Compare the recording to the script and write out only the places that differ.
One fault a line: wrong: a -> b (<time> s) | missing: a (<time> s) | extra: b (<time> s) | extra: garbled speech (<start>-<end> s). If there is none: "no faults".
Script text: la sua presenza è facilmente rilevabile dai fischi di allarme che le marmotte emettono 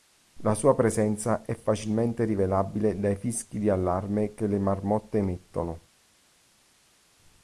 no faults